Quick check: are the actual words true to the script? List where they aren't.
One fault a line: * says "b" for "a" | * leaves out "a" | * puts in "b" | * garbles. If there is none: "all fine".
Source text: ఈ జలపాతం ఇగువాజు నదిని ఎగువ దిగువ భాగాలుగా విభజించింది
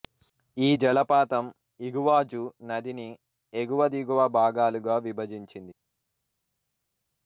all fine